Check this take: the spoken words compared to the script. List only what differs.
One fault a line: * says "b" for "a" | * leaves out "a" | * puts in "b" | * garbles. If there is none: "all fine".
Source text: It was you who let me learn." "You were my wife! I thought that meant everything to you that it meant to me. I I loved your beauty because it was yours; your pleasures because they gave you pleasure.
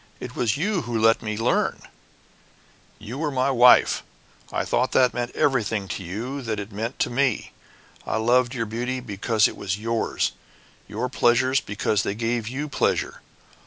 * leaves out "I"